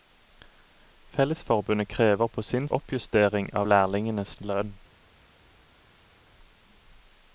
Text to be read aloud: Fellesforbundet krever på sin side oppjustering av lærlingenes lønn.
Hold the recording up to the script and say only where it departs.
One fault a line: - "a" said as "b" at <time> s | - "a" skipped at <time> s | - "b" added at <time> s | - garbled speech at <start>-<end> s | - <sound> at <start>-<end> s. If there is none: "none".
- "side" skipped at 2.7 s